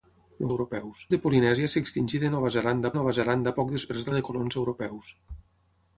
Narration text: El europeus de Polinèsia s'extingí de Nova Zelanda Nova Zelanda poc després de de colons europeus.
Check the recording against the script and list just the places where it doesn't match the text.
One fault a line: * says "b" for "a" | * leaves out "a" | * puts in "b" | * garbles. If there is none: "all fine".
all fine